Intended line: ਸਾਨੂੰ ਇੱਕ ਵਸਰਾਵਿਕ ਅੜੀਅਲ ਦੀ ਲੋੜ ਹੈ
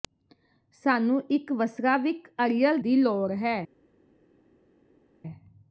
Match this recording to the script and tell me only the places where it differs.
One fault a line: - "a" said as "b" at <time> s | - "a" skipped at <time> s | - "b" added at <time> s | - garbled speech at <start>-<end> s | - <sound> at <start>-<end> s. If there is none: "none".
none